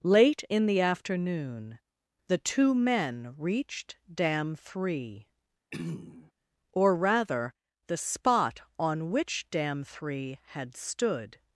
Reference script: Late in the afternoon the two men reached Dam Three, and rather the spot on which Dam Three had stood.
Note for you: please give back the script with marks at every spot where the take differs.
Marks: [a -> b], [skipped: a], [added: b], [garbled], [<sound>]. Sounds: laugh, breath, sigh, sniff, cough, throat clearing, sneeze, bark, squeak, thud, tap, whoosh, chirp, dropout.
Late in the afternoon the two men reached Dam Three, [throat clearing] [and -> or] rather the spot on which Dam Three had stood.